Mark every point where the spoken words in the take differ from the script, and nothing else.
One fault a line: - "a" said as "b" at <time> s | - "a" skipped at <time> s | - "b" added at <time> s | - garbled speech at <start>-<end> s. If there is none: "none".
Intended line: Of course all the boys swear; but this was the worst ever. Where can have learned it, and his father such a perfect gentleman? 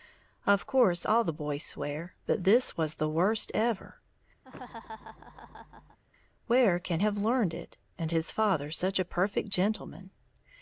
none